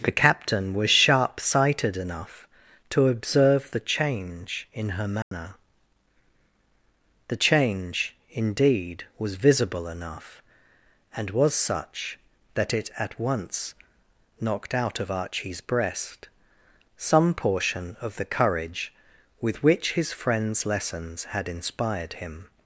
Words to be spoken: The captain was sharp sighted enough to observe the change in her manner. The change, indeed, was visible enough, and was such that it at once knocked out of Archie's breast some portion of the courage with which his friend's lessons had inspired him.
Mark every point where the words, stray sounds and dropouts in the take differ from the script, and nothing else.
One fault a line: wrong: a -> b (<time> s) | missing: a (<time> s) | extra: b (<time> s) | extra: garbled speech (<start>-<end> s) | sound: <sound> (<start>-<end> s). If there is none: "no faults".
sound: dropout (5.2-5.3 s)